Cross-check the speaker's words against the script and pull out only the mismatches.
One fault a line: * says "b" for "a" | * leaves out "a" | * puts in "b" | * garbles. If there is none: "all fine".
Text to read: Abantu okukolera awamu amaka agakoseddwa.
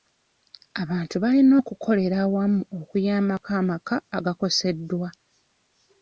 * puts in "balina"
* puts in "okuyambako"